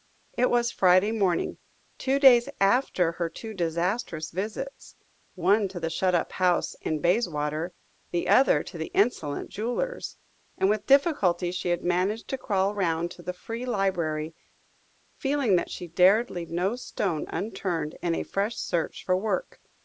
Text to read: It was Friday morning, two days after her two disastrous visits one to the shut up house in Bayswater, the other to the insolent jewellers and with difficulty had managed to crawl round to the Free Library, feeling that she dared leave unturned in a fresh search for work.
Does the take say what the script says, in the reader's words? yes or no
no